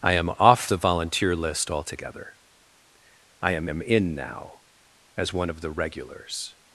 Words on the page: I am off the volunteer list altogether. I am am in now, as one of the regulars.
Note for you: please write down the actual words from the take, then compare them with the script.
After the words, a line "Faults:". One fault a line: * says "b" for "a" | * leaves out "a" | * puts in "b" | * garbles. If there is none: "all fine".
I am off the volunteer list altogether. I am am in now, as one of the regulars.
Faults:
all fine